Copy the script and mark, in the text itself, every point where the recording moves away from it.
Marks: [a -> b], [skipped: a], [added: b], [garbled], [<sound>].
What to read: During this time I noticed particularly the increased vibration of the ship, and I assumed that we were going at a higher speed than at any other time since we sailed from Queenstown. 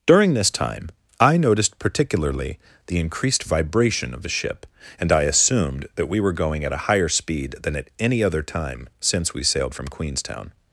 During this time I noticed particularly the increased vibration of the ship, and I assumed that we were going at a higher speed than at any other time since we sailed from Queenstown.